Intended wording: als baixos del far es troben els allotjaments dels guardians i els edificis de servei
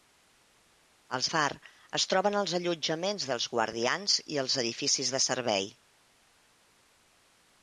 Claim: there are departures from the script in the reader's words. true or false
true